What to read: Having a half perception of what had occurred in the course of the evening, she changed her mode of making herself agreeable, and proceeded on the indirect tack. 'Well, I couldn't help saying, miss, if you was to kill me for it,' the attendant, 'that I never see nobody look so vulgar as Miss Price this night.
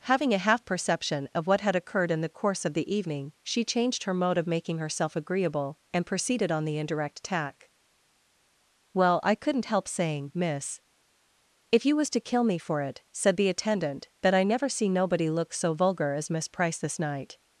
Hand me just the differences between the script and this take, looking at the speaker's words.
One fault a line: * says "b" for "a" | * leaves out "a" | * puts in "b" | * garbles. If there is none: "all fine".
* puts in "said"